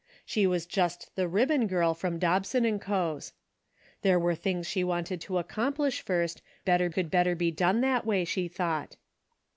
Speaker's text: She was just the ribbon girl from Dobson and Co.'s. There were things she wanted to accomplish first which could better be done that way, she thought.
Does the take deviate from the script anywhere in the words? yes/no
yes